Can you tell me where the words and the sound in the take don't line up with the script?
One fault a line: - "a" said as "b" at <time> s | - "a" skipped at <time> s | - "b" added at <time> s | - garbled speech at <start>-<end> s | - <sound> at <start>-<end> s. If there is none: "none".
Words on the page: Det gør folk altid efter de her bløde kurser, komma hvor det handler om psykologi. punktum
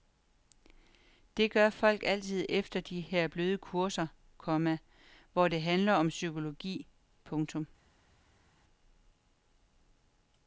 none